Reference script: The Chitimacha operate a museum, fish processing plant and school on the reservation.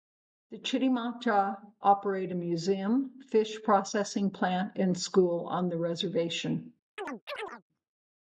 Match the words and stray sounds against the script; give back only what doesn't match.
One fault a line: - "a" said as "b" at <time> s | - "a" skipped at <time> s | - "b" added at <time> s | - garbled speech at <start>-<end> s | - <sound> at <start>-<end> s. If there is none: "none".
- chirp at 7.0-7.6 s